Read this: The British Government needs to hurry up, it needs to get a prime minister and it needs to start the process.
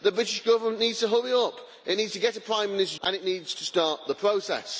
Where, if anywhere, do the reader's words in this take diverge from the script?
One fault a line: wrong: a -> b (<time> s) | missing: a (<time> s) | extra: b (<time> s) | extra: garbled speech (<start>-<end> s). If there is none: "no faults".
no faults